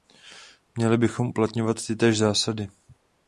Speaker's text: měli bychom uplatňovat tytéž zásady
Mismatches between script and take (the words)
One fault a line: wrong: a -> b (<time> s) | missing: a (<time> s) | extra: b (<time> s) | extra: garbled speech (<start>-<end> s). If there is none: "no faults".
no faults